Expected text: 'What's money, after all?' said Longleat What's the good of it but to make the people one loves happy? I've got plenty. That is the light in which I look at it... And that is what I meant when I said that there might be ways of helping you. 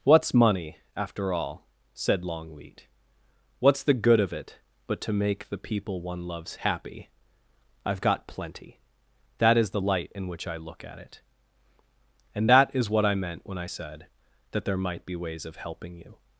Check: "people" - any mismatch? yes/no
no